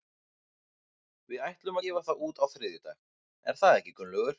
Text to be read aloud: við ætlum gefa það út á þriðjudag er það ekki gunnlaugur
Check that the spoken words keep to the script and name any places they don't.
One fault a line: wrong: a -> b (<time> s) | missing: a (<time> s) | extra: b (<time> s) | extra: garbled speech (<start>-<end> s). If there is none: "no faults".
no faults